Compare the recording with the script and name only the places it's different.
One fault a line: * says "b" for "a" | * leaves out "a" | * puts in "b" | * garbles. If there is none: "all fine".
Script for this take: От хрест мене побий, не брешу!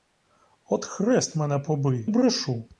* leaves out "не"